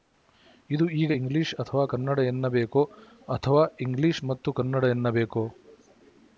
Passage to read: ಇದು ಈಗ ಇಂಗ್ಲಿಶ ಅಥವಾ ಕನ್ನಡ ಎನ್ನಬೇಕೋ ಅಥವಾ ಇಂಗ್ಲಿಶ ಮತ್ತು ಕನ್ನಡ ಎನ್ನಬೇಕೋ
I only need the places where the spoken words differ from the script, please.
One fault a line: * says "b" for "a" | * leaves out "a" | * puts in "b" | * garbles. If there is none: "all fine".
all fine